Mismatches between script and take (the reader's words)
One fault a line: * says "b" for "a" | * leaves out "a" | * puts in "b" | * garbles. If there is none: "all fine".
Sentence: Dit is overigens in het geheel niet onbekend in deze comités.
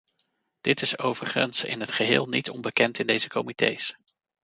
all fine